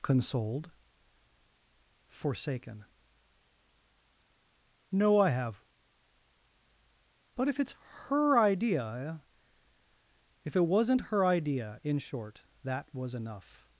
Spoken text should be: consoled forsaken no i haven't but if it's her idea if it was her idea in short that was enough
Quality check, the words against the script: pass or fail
fail